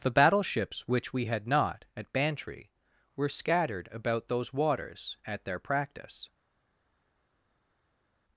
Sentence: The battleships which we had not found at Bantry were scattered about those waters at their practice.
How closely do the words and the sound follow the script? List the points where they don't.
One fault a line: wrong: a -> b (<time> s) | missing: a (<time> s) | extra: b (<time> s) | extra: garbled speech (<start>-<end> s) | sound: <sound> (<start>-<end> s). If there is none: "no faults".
missing: found (1.9 s)